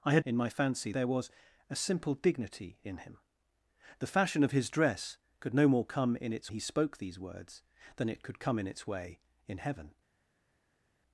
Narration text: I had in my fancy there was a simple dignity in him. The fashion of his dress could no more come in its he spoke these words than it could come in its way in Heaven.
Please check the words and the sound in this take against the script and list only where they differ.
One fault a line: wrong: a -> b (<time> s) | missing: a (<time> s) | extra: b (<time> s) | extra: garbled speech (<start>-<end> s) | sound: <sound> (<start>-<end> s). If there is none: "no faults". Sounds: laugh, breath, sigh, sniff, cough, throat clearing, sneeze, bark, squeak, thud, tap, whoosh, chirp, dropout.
no faults